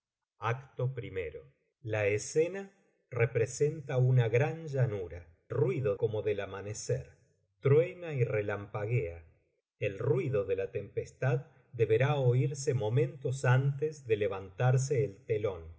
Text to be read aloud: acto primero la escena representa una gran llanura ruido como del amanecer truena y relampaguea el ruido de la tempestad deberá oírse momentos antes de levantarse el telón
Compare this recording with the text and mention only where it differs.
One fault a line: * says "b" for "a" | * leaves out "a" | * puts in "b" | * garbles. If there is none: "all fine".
all fine